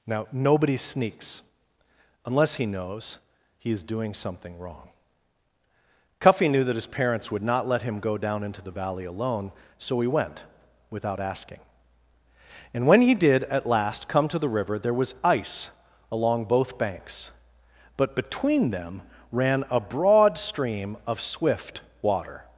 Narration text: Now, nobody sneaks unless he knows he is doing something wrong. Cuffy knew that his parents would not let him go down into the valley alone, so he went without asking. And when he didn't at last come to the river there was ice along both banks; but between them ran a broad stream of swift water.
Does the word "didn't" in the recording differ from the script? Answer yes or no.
yes